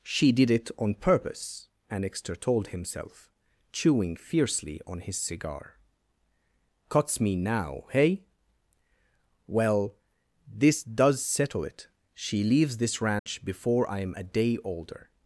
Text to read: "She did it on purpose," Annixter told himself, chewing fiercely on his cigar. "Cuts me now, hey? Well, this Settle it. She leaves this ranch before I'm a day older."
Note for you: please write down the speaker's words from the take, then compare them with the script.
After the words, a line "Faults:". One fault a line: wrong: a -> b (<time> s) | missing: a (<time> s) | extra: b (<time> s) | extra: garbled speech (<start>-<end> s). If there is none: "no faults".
"She did it on purpose," Annixter told himself, chewing fiercely on his cigar. "Cuts me now, hey? Well, this DOES settle it. She leaves this ranch before I'm a day older."
Faults:
extra: DOES (10.8 s)